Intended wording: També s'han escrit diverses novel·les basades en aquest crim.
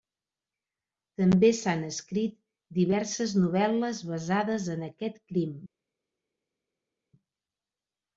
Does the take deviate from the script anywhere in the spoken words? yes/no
no